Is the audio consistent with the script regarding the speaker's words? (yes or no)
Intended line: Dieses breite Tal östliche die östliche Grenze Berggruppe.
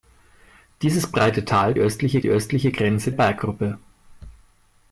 yes